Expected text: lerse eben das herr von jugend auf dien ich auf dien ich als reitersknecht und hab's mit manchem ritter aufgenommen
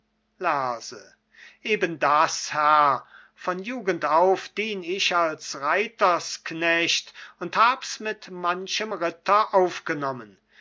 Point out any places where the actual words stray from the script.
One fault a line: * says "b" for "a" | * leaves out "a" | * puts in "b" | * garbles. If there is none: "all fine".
* leaves out "auf dien ich"